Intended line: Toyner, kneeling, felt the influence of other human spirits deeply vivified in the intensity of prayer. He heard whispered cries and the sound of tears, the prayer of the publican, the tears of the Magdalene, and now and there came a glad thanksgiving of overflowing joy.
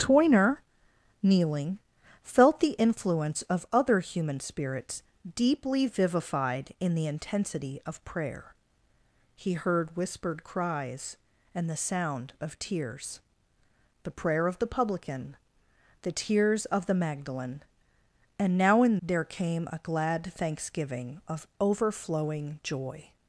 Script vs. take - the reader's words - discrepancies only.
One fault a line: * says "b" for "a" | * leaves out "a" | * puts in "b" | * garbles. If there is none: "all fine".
all fine